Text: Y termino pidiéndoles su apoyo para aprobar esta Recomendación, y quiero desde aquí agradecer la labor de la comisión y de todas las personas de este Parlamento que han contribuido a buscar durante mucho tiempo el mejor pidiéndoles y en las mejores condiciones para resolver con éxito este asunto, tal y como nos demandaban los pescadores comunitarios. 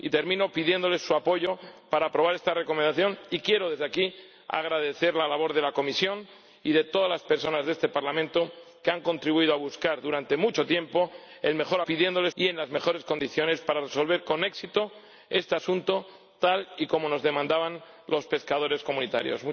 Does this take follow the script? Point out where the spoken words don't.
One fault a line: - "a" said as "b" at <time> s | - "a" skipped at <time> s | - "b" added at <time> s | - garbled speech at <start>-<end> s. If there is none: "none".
none